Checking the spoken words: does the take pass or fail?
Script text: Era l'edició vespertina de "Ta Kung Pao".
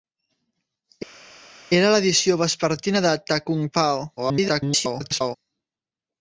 fail